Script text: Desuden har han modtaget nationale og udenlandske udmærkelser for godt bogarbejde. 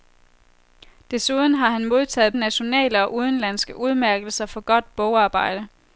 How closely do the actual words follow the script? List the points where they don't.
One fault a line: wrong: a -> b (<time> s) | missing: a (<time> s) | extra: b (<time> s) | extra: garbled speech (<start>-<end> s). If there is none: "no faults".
no faults